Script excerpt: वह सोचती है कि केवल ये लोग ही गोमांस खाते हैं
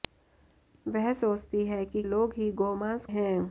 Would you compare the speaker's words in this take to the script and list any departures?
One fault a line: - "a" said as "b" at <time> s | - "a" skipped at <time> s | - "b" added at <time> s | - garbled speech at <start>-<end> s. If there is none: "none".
- "केवल ये" skipped at 2.0 s
- "खाते" skipped at 3.1 s